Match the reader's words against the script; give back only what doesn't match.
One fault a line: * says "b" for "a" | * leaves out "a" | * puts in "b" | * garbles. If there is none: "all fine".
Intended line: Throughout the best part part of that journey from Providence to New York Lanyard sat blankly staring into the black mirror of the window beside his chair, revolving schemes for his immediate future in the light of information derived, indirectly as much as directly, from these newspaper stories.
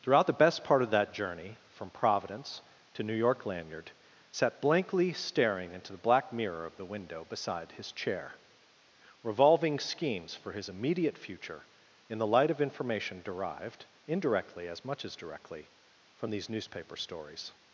* leaves out "part"